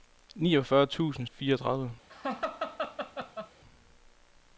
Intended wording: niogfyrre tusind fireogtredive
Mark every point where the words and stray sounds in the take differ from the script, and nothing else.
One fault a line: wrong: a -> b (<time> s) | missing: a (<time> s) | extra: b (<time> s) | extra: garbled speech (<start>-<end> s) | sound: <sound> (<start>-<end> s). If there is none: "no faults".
sound: laugh (2.1-3.5 s)